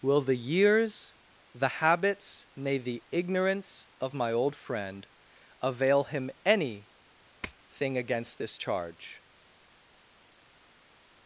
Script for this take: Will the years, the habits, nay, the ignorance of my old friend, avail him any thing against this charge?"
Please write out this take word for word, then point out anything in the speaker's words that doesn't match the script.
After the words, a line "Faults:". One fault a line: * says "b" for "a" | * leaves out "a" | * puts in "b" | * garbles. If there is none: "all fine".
Will the years, the habits, nay, the ignorance of my old friend, avail him any thing against this charge?"
Faults:
all fine